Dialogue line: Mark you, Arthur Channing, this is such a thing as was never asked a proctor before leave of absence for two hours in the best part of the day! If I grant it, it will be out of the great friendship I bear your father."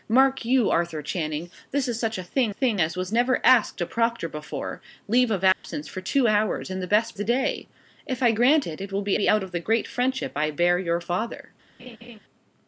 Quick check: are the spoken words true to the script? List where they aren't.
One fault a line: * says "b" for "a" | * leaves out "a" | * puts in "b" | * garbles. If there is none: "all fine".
* puts in "thing"
* leaves out "part of"
* puts in "be"